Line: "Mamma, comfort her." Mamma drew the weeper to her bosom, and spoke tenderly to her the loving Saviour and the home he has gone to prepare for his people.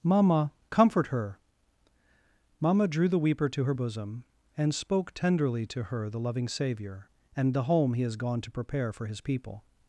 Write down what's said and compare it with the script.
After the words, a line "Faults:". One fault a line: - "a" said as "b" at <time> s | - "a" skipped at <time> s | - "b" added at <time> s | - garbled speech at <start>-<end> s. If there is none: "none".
"Mamma, comfort her." Mamma drew the weeper to her bosom, and spoke tenderly to her the loving Saviour and the home he has gone to prepare for his people.
Faults:
none